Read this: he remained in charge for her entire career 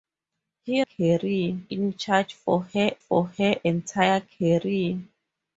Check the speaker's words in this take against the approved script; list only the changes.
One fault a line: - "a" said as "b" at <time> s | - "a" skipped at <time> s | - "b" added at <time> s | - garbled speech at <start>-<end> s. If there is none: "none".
- "remained" said as "career" at 0.8 s
- "for her" added at 3.0 s